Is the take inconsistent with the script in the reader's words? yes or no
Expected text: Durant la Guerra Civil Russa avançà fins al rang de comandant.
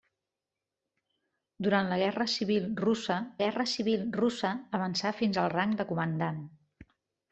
yes